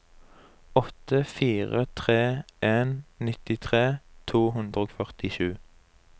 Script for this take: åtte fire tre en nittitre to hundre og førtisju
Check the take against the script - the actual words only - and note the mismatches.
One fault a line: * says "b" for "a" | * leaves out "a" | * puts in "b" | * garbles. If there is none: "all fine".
all fine